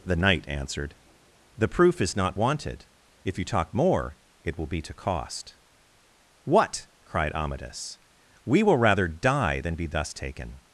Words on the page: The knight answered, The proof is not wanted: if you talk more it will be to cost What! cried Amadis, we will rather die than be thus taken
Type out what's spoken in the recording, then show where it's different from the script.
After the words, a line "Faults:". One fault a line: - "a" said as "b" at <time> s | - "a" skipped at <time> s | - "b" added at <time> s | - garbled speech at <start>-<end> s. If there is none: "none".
The knight answered, The proof is not wanted: if you talk more it will be to cost What! cried Amadis, we will rather die than be thus taken
Faults:
none